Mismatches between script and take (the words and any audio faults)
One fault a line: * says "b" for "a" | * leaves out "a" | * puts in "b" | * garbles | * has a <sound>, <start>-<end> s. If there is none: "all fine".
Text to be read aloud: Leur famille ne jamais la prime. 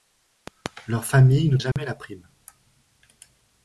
* has a dropout, 1.7-1.8 s